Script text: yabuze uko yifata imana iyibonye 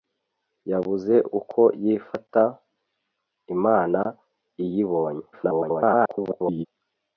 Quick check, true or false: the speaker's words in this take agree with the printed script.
false